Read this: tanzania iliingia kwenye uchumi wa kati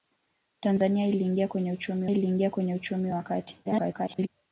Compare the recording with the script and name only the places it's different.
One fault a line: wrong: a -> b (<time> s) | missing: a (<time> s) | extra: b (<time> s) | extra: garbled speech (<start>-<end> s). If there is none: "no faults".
extra: iliingia kwenye uchumi (2.1 s)
extra: garbled speech (3.6-4.3 s)